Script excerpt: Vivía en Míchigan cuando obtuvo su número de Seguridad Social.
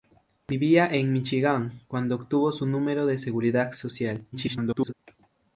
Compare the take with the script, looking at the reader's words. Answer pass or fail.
fail